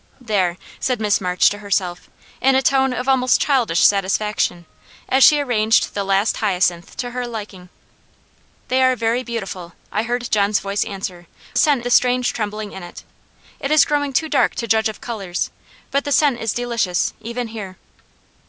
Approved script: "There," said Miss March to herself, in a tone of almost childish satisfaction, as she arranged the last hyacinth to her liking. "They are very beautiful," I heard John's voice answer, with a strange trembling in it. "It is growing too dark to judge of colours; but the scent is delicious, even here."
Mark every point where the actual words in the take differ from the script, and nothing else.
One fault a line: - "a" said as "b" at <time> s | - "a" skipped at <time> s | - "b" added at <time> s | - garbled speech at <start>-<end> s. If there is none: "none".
- "with" said as "scent" at 11.6 s